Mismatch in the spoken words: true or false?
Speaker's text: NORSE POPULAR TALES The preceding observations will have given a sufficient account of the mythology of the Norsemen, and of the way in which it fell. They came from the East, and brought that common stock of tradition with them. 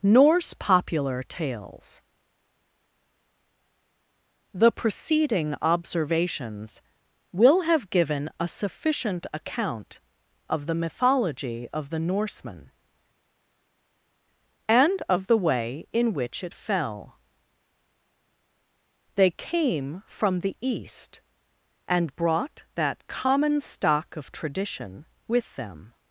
false